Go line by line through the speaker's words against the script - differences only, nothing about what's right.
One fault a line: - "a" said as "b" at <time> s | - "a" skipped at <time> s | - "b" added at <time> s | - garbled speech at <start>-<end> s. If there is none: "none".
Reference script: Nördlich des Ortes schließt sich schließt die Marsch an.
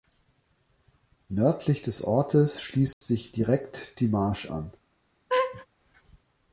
- "schließt" said as "direkt" at 3.3 s